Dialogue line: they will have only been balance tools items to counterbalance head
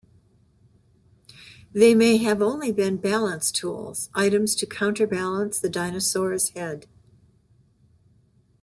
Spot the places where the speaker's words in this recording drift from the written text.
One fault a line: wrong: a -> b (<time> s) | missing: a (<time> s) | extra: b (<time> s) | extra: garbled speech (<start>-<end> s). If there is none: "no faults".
wrong: will -> may (1.9 s)
extra: the dinosaur's (5.6 s)